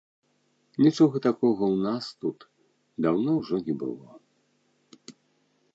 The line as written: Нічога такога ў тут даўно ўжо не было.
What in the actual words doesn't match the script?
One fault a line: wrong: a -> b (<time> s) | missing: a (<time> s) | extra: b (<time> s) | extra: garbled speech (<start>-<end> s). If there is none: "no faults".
extra: нас (1.9 s)